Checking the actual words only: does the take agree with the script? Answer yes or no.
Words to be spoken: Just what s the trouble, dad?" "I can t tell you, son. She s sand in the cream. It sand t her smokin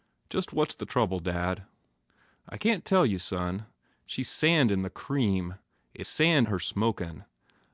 yes